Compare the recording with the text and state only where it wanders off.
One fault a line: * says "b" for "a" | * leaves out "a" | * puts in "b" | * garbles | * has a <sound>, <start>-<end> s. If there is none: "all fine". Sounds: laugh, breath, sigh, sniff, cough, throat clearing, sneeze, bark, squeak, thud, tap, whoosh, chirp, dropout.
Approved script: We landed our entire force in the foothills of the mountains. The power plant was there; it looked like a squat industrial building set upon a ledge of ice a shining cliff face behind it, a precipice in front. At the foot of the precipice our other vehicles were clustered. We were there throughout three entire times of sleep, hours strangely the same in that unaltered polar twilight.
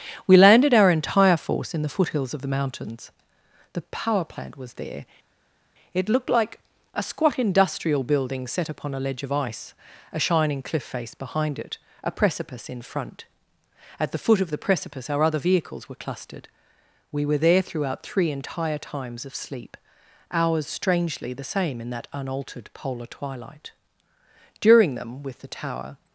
* puts in "During them with the tower"